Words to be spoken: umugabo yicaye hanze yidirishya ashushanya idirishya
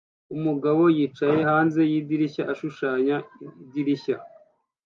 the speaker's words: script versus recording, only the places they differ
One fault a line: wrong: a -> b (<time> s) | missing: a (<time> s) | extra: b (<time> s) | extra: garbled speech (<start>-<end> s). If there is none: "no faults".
no faults